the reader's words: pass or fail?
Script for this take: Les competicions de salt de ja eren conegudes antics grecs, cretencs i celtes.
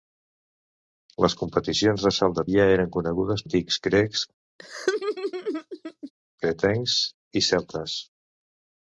pass